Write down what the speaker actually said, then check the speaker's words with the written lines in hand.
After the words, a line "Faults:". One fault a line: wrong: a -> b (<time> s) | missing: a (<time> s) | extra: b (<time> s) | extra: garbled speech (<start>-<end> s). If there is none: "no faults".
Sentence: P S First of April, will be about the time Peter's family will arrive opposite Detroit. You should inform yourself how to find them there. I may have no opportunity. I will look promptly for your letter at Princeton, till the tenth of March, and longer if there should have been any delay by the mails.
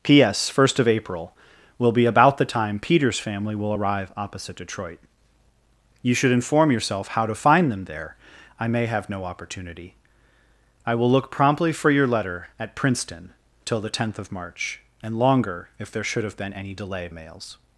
P S First of April, will be about the time Peter's family will arrive opposite Detroit. You should inform yourself how to find them there. I may have no opportunity. I will look promptly for your letter at Princeton, till the tenth of March, and longer if there should have been any delay mails.
Faults:
missing: by the (17.1 s)